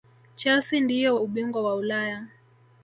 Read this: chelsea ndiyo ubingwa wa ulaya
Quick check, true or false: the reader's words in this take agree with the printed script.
true